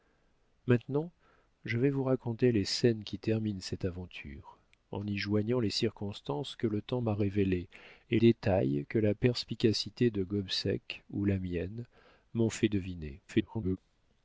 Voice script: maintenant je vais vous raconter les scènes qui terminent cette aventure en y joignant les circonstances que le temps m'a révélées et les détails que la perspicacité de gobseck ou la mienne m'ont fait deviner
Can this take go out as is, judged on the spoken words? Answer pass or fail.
fail